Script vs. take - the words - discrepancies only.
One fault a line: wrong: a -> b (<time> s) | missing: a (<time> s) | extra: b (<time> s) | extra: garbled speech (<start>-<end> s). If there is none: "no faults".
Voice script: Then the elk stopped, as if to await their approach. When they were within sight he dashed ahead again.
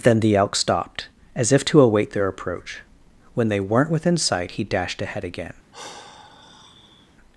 wrong: were -> weren't (3.6 s)